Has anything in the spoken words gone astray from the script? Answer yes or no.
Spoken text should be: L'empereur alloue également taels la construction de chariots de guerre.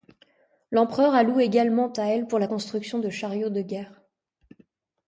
yes